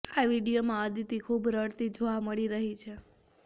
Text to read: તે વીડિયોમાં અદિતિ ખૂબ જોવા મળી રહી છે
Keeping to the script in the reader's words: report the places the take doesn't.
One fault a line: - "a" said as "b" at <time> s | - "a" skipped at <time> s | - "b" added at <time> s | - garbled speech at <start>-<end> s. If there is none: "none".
- "તે" said as "આ" at 0.1 s
- "રડતી" added at 1.5 s